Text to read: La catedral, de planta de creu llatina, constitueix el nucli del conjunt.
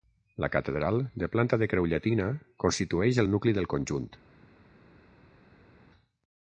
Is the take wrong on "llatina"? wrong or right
right